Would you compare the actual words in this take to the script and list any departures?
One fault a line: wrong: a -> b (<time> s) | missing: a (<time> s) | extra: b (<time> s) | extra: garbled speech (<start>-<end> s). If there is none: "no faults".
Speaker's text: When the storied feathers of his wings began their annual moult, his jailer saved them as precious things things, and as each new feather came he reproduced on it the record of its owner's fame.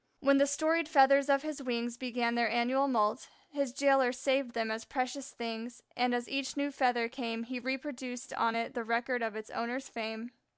missing: things (5.8 s)